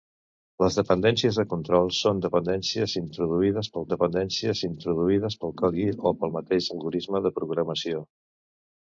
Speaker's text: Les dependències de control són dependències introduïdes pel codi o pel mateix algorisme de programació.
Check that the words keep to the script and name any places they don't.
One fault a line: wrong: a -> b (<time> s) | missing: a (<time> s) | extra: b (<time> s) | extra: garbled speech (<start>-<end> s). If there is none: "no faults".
extra: dependències introduïdes pel (3.9 s)